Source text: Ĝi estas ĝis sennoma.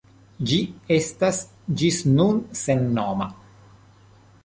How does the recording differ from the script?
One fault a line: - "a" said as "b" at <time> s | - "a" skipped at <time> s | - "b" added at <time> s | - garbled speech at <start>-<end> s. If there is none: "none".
- "nun" added at 2.2 s